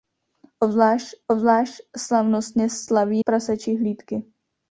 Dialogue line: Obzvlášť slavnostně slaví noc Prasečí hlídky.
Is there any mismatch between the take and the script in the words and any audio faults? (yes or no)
yes